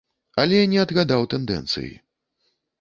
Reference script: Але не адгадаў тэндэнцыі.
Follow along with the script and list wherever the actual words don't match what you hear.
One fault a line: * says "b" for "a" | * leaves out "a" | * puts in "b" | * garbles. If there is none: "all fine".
all fine